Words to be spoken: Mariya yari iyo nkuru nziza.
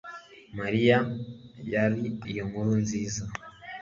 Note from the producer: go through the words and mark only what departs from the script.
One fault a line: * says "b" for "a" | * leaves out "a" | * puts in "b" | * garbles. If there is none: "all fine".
all fine